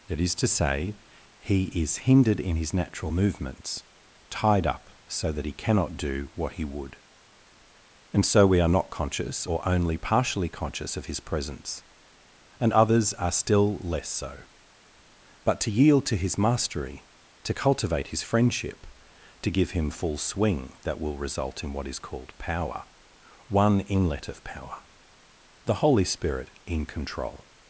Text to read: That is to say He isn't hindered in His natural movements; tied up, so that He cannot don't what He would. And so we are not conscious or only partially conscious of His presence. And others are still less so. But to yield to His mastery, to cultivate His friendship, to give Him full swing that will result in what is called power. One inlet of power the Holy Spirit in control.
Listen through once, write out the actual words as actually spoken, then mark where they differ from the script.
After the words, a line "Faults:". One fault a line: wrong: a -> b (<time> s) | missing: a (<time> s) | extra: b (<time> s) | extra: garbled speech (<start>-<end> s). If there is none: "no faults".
That is to say He is hindered in His natural movements; tied up, so that He cannot do what He would. And so we are not conscious or only partially conscious of His presence. And others are still less so. But to yield to His mastery, to cultivate His friendship, to give Him full swing that will result in what is called power. One inlet of power the Holy Spirit in control.
Faults:
wrong: isn't -> is (1.6 s)
wrong: don't -> do (6.0 s)